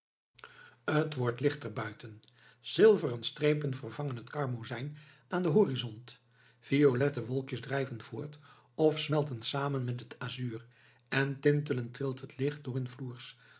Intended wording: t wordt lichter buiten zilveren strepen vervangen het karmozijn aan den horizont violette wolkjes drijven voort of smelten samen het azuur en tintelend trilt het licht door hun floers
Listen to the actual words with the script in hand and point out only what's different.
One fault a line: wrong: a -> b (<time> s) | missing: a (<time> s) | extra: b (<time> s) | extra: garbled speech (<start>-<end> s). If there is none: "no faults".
extra: met (9.8 s)